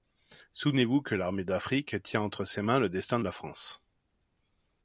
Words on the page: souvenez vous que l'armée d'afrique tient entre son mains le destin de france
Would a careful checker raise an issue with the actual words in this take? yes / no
yes